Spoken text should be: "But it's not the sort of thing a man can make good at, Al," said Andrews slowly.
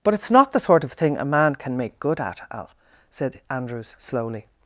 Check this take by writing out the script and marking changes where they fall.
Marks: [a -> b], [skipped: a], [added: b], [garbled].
"But it's not the sort of thing a man can make good at, Al," said Andrews slowly.